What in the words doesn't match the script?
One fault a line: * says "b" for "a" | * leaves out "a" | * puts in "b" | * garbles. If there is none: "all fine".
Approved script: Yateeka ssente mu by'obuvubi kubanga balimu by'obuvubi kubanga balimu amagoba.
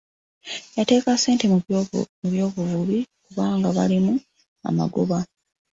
* leaves out "by'obuvubi kubanga balimu"